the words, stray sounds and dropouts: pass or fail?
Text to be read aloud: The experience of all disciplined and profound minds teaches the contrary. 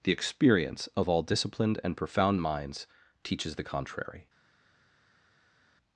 pass